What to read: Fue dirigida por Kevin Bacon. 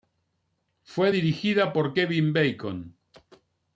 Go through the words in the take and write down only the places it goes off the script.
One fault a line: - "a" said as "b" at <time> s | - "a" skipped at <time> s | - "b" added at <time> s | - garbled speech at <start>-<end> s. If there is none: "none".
none